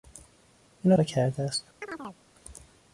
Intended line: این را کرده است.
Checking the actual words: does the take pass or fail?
pass